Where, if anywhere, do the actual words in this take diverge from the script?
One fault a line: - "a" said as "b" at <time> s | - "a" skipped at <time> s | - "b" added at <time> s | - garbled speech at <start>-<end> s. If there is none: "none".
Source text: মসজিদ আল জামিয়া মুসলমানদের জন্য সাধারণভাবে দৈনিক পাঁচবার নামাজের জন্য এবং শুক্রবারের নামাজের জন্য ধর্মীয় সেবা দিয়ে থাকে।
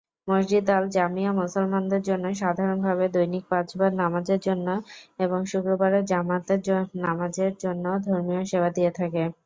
- "জামাতের" added at 6.1 s